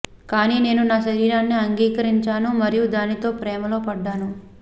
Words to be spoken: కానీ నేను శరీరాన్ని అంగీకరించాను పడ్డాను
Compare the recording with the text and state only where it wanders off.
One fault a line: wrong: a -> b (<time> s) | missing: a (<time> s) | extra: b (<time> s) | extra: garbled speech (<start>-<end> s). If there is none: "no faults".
extra: నా (0.8 s)
extra: మరియు దానితో ప్రేమలో (2.6 s)